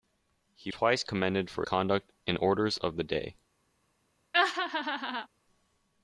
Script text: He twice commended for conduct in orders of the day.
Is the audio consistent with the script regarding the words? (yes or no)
yes